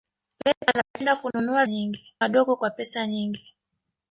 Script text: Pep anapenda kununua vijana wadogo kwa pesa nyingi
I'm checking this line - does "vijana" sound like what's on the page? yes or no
no